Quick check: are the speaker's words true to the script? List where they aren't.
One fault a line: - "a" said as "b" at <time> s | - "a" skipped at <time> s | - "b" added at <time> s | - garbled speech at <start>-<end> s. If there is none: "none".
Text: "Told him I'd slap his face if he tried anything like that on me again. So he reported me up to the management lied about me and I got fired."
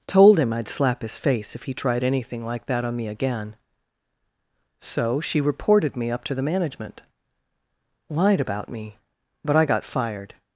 - "he" said as "she" at 5.2 s
- "and" said as "but" at 9.4 s